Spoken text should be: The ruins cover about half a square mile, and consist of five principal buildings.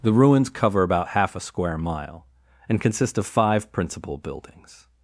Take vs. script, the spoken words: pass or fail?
pass